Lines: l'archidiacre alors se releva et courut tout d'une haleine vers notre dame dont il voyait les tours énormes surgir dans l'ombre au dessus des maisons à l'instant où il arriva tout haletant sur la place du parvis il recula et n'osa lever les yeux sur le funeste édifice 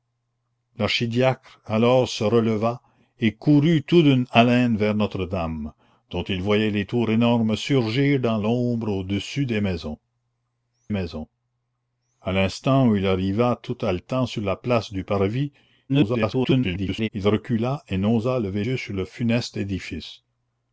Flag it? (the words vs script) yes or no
yes